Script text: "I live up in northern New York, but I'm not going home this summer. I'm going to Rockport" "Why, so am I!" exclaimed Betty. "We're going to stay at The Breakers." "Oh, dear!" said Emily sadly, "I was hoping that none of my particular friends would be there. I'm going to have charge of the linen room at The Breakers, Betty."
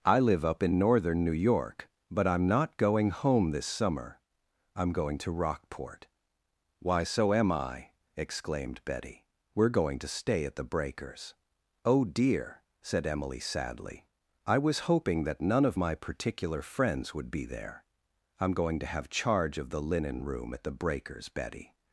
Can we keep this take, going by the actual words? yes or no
yes